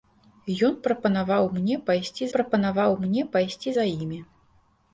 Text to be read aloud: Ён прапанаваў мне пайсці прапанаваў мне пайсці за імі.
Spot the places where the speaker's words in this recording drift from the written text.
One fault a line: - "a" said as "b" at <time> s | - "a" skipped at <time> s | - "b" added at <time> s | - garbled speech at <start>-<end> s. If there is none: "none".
none